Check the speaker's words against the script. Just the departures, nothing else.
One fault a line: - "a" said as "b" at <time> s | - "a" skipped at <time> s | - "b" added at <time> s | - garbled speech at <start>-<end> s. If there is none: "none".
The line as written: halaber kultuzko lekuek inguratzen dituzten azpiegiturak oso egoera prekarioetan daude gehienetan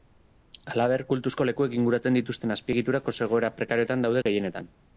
none